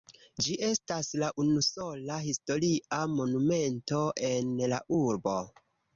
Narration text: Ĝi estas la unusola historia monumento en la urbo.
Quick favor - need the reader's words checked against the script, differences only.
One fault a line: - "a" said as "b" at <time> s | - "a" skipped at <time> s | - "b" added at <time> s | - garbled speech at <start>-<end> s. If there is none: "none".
none